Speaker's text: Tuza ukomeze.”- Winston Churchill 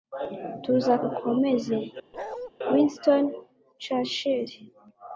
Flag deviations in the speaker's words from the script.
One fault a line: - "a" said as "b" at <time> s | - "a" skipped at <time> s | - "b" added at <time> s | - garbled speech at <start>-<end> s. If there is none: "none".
none